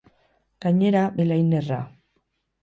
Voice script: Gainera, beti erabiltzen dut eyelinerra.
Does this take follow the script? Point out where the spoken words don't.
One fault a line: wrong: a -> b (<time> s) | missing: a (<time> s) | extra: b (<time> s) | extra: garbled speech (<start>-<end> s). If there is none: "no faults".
missing: beti erabiltzen dut (1.0 s)